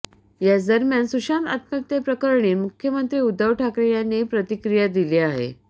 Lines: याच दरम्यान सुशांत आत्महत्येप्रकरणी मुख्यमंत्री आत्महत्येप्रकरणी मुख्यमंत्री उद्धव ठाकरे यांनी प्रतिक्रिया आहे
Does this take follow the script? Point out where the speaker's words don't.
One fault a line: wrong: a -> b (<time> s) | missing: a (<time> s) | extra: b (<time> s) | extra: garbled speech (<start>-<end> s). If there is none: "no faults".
missing: आत्महत्येप्रकरणी मुख्यमंत्री (3.2 s)
extra: दिली (4.9 s)